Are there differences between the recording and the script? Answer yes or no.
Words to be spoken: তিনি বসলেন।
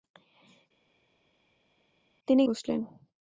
no